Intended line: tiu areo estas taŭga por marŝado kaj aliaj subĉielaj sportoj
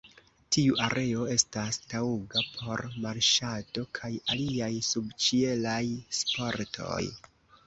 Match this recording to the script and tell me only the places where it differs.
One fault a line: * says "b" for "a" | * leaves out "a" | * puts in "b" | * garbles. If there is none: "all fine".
all fine